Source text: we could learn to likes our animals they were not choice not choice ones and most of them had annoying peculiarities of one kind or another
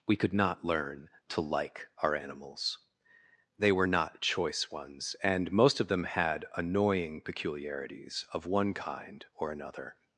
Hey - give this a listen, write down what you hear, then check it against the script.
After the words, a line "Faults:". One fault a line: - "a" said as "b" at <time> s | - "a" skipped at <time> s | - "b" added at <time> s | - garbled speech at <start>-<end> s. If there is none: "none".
we could not learn to like our animals they were not choice ones and most of them had annoying peculiarities of one kind or another
Faults:
- "not" added at 0.3 s
- "likes" said as "like" at 1.4 s
- "not choice" skipped at 4.7 s